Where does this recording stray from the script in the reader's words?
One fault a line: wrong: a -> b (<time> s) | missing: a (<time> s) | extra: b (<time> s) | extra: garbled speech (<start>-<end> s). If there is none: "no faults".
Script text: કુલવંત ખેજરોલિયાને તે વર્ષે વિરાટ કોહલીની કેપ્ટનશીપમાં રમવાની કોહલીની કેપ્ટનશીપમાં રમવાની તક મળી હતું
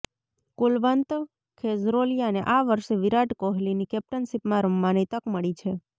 wrong: તે -> આ (2.5 s)
missing: કોહલીની કેપ્ટનશીપમાં રમવાની (5.1 s)
wrong: હતું -> છે (5.6 s)